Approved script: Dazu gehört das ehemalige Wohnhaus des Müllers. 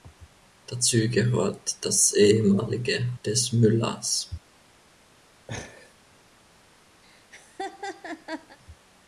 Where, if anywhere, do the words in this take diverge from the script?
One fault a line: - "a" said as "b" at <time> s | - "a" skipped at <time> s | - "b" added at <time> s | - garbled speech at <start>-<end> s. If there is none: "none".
- "Wohnhaus" skipped at 3.1 s